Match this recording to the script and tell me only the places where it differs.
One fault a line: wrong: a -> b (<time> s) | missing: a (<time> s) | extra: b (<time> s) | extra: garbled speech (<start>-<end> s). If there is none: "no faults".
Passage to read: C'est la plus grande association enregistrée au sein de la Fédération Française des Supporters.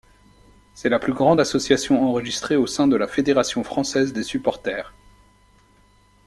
no faults